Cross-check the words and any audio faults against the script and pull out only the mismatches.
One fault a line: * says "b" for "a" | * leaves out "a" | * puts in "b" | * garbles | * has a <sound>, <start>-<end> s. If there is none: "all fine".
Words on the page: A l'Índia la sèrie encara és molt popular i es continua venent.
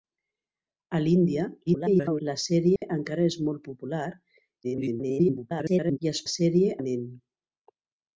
* garbles
* has a dropout, 2.8-2.8 s
* garbles
* says "sèrie" for "continua"